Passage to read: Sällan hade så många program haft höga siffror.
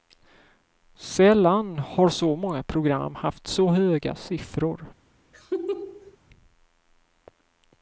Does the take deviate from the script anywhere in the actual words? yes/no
yes